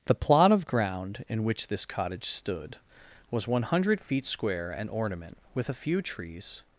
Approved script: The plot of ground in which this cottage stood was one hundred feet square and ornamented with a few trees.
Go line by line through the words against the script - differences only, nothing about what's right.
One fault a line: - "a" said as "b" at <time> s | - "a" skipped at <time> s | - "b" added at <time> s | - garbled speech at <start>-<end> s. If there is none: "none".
- "ornamented" said as "ornament" at 4.9 s